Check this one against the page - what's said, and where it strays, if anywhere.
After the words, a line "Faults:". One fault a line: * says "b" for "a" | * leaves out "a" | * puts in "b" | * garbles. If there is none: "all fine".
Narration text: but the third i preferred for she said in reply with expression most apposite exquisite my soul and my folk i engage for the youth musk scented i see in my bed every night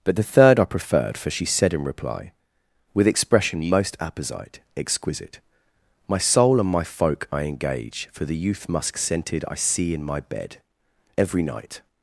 but the third i preferred for she said in reply with expression most apposite exquisite my soul and my folk i engage for the youth musk scented i see in my bed every night
Faults:
all fine